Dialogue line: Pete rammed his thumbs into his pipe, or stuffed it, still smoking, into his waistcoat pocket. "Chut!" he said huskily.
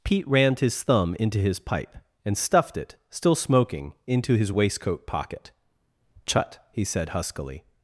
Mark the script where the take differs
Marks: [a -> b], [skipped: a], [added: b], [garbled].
Pete rammed his [thumbs -> thumb] into his pipe, [or -> and] stuffed it, still smoking, into his waistcoat pocket. "Chut!" he said huskily.